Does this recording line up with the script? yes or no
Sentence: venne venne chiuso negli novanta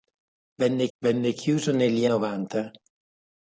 yes